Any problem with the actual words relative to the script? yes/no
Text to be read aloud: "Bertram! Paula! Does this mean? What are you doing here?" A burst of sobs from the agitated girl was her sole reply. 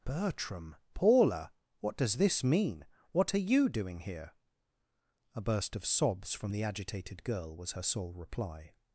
yes